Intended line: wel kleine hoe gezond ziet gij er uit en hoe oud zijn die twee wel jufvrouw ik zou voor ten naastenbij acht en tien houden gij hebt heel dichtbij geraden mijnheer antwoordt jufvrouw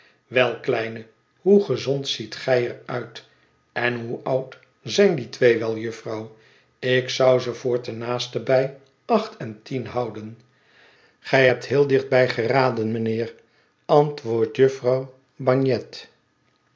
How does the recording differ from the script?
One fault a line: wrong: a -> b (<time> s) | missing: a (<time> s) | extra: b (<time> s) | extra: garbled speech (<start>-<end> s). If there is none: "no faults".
extra: ze (7.4 s)